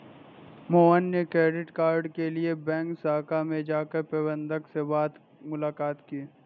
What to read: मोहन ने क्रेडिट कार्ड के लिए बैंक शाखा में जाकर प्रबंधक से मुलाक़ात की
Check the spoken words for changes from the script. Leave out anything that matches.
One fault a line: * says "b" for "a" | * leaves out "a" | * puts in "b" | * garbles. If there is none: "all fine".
all fine